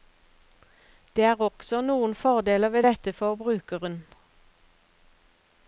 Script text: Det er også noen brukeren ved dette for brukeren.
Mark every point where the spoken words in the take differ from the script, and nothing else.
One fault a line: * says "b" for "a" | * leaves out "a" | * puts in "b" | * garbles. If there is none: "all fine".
* says "fordeler" for "brukeren"